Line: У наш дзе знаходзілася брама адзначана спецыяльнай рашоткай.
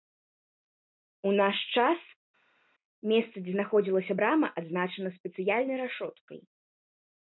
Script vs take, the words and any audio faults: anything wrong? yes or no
yes